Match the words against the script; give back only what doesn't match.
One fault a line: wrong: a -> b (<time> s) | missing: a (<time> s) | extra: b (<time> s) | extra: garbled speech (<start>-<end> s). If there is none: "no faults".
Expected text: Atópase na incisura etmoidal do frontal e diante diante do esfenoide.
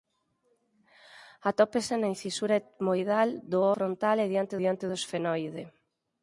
no faults